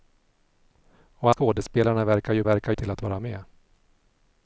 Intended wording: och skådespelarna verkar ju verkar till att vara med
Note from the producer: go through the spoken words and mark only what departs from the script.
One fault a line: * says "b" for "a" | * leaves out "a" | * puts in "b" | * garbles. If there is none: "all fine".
all fine